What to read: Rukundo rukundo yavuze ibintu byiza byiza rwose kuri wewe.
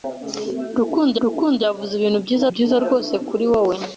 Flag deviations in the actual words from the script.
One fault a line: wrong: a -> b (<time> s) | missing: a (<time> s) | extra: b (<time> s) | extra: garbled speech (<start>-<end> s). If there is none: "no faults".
no faults